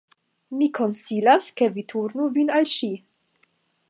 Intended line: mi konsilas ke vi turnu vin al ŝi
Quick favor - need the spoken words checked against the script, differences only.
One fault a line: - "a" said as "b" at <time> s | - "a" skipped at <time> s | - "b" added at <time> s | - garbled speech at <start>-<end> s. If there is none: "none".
none